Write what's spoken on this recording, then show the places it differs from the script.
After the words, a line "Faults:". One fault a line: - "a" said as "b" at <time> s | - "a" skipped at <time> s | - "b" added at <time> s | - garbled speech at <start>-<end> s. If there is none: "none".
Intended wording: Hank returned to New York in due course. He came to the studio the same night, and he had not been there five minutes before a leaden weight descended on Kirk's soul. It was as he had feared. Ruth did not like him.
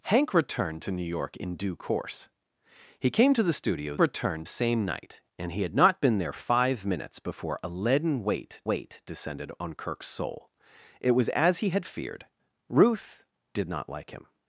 Hank returned to New York in due course. He came to the studio returned same night, and he had not been there five minutes before a leaden weight weight descended on Kirk's soul. It was as he had feared. Ruth did not like him.
Faults:
- "the" said as "returned" at 4.0 s
- "weight" added at 8.6 s